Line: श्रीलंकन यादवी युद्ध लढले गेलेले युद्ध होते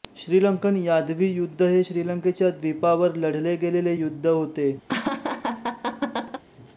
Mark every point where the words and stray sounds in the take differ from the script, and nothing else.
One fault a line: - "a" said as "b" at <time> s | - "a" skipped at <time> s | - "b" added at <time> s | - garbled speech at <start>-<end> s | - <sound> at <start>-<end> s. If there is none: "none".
- "हे श्रीलंकेच्या द्वीपावर" added at 1.6 s
- laugh at 4.9-6.4 s